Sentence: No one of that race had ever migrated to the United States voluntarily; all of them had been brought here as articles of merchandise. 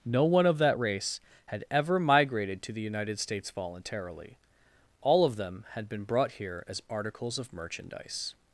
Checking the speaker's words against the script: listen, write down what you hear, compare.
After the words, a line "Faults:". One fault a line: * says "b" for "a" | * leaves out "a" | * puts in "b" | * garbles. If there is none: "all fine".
No one of that race had ever migrated to the United States voluntarily; all of them had been brought here as articles of merchandise.
Faults:
all fine